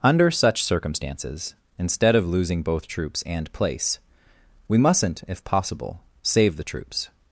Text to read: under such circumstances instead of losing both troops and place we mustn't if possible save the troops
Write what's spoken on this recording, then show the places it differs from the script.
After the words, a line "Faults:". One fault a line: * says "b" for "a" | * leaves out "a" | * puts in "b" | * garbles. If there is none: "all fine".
under such circumstances instead of losing both troops and place we mustn't if possible save the troops
Faults:
all fine